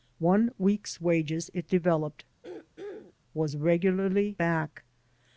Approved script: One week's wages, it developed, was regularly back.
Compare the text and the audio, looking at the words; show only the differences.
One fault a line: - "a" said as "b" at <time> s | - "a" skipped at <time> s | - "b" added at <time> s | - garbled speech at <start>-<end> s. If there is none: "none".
none